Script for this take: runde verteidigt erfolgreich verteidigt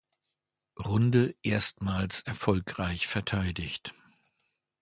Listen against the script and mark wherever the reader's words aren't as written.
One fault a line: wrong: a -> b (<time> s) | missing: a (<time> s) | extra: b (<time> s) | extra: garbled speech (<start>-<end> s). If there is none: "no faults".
wrong: verteidigt -> erstmals (1.4 s)